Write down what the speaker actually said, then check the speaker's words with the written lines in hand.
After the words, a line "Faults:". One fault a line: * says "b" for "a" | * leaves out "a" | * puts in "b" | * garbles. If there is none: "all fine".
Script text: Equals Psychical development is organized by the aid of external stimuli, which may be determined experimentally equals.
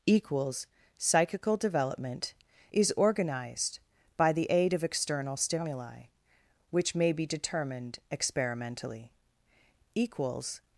Equals Psychical development is organized by the aid of external stimuli, which may be determined experimentally equals.
Faults:
all fine